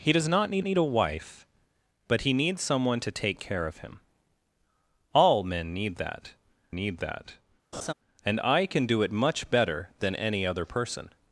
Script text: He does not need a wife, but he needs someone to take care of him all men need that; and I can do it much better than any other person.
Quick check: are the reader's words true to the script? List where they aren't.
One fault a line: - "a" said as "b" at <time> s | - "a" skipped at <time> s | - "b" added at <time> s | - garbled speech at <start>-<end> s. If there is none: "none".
- "need" added at 0.6 s
- "need that" added at 6.7 s